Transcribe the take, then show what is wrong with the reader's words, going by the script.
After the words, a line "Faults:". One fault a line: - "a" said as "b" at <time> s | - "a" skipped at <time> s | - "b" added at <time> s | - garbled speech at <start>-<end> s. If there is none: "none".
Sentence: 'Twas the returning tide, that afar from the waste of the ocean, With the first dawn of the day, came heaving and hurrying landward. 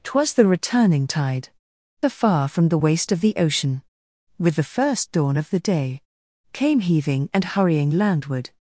'Twas the returning tide, afar from the waste of the ocean, With the first dawn of the day, came heaving and hurrying landward.
Faults:
- "that" skipped at 1.5 s